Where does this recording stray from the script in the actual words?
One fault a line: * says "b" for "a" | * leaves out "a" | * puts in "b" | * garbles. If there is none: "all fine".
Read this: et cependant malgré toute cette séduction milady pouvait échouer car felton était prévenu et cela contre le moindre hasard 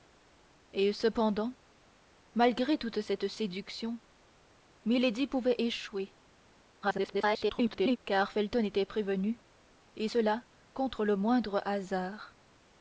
* garbles